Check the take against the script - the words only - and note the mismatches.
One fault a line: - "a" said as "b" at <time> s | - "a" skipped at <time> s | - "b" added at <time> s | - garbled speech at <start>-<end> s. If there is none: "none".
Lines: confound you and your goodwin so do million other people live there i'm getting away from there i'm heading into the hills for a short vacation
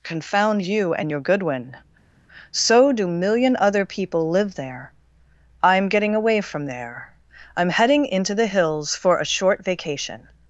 none